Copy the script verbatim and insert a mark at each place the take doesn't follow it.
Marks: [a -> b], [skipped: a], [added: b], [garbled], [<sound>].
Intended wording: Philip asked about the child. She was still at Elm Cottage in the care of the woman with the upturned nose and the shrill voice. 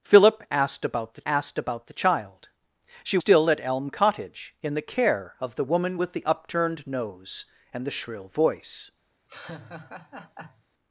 Philip asked about the [added: asked about the] child. She [skipped: was] still at Elm Cottage in the care of the woman with the upturned nose and the shrill voice. [laugh]